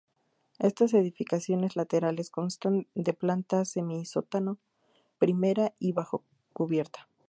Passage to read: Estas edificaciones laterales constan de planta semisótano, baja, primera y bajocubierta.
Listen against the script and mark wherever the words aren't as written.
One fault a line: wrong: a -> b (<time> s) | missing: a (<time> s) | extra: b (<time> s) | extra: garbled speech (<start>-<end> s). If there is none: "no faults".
missing: baja (4.6 s)